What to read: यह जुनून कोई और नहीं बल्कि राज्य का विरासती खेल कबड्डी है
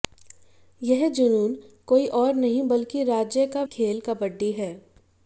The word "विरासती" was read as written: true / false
false